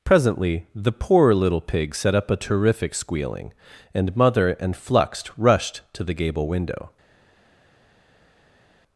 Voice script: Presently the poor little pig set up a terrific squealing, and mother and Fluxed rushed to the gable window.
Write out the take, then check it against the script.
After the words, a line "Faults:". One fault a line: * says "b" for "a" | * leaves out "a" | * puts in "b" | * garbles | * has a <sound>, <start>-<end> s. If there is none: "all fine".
Presently the poor little pig set up a terrific squealing, and mother and Fluxed rushed to the gable window.
Faults:
all fine